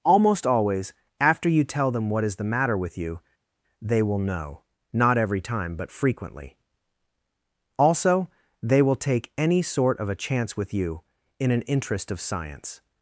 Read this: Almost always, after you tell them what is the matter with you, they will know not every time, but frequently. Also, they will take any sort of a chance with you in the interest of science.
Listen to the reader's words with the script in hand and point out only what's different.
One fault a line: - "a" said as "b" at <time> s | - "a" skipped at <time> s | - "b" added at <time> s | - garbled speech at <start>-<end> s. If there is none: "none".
- "the" said as "an" at 11.5 s